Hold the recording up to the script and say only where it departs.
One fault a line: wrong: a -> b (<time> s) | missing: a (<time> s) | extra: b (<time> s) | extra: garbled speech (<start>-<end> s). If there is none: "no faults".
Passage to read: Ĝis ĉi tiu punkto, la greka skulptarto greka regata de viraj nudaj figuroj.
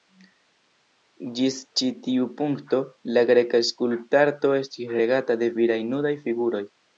wrong: greka -> estis (4.6 s)